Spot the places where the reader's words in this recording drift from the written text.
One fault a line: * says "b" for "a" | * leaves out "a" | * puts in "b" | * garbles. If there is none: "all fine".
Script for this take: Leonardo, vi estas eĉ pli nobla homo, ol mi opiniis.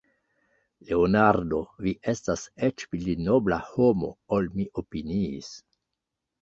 all fine